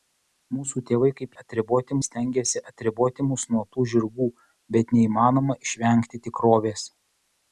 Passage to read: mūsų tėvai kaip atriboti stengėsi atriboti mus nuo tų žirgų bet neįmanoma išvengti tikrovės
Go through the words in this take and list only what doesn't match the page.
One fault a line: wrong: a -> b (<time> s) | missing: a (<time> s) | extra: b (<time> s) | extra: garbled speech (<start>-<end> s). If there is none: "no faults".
no faults